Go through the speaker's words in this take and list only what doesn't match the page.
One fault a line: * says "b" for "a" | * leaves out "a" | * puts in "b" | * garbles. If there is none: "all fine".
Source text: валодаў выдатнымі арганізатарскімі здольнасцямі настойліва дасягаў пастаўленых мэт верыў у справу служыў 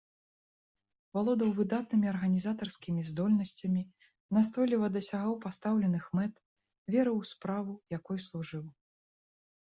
* puts in "якой"